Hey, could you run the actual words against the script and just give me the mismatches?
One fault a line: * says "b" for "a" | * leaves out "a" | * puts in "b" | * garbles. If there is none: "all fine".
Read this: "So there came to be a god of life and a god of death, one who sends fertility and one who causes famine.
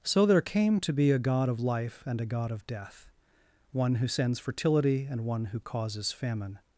all fine